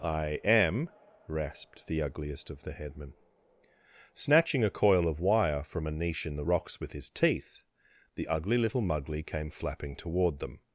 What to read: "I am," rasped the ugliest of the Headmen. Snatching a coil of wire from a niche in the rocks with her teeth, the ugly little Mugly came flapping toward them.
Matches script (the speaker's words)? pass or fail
fail